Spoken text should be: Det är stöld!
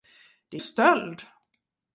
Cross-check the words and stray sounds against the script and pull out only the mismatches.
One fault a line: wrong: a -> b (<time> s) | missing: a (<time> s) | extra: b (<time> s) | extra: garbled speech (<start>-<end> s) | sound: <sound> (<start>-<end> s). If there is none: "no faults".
no faults